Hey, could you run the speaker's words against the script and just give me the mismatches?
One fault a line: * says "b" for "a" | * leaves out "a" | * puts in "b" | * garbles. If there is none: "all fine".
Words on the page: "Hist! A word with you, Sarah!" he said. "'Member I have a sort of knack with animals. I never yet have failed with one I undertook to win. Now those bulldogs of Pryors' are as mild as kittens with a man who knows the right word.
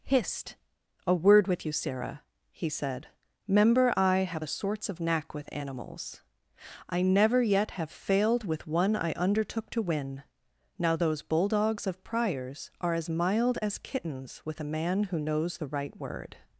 * says "sorts" for "sort"